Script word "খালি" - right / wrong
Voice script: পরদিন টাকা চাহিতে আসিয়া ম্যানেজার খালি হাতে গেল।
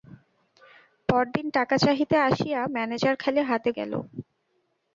right